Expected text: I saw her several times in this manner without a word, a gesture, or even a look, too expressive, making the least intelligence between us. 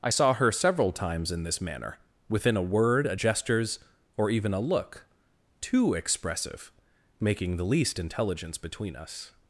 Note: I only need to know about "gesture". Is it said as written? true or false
false